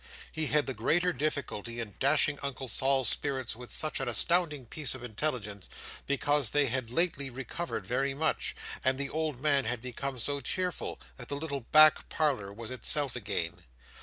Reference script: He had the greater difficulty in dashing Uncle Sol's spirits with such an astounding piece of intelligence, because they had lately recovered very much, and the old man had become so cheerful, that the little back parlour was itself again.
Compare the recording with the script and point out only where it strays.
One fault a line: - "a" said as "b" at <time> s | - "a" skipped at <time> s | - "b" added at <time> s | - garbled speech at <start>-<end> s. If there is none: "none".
none